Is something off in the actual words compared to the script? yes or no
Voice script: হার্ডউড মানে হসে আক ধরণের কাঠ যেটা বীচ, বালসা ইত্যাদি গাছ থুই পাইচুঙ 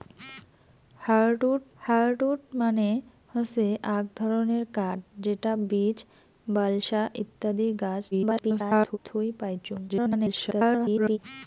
yes